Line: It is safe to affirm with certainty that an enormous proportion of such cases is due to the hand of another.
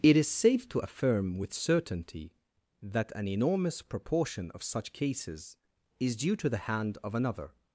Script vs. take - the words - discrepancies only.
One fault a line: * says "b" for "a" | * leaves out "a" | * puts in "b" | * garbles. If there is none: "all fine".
all fine